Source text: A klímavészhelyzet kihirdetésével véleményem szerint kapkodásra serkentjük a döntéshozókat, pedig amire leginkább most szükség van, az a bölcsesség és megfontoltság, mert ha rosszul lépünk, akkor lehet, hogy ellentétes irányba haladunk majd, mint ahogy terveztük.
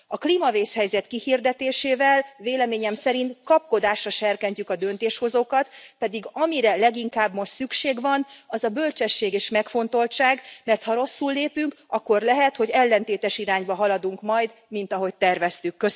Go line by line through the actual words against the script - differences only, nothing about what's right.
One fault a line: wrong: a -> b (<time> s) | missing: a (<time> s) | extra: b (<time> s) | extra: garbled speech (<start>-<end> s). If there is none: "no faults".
no faults